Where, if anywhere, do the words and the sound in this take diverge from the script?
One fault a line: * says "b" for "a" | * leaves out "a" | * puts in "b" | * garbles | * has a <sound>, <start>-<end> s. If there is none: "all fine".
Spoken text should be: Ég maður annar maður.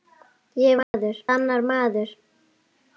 * has a dropout, 0.8-0.9 s